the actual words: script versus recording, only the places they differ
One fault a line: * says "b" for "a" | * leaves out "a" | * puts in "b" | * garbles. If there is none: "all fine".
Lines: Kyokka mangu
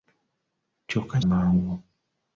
all fine